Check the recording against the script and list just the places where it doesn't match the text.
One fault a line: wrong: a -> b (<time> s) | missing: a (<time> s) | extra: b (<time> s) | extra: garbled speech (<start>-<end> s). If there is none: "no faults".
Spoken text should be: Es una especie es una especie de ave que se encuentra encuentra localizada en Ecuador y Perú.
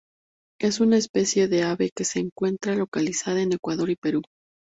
missing: es una especie (1.5 s)
missing: encuentra (2.7 s)